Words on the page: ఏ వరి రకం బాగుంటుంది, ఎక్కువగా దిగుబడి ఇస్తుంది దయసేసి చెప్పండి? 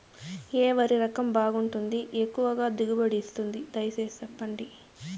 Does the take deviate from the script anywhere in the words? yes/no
no